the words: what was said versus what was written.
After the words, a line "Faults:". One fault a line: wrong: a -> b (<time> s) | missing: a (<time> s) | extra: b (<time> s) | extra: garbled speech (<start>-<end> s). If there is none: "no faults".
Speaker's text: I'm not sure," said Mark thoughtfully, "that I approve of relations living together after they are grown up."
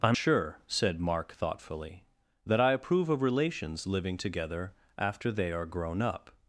I'm sure," said Mark thoughtfully, "that I approve of relations living together after they are grown up."
Faults:
missing: not (0.2 s)